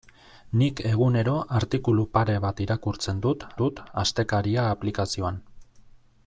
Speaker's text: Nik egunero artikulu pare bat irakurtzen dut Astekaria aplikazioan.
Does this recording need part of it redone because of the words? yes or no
yes